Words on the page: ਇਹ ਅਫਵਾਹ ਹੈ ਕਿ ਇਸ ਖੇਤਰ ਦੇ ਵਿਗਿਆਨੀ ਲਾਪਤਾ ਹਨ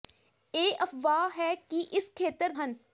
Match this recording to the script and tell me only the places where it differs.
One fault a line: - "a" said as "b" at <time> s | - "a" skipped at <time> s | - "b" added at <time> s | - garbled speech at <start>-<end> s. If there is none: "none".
- "ਦੇ ਵਿਗਿਆਨੀ ਲਾਪਤਾ" skipped at 2.5 s